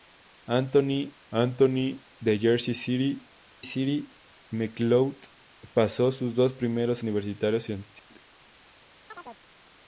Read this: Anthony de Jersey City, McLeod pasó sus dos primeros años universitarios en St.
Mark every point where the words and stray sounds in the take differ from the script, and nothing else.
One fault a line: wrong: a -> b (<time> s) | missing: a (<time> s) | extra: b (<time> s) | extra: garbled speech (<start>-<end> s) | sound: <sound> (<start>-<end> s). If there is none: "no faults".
extra: anthony (1.3 s)
extra: City (3.6 s)
missing: años (7.0 s)
sound: dropout (8.0-8.1 s)
sound: chirp (9.1-9.4 s)